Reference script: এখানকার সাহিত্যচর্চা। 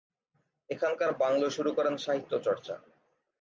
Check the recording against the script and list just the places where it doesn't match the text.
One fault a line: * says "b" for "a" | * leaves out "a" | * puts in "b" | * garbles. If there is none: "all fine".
* puts in "বাংলোয় শুরু করেন"